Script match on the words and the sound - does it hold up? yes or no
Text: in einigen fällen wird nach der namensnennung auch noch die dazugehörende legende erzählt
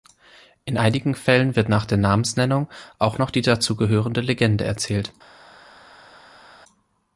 yes